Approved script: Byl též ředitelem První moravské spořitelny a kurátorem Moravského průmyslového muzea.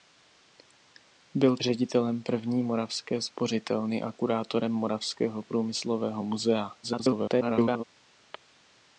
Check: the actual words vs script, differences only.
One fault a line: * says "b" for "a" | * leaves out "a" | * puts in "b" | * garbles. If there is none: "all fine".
* leaves out "též"
* garbles